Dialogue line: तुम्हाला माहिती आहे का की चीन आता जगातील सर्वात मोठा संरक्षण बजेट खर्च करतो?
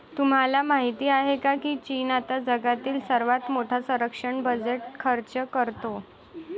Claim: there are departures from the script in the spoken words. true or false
false